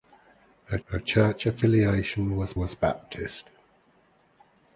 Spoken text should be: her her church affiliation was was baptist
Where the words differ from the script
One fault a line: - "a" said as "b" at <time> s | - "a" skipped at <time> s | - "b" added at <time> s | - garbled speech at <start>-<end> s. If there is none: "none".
none